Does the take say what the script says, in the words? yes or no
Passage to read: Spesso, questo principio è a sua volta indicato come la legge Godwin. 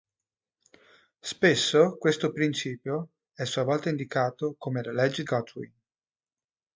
yes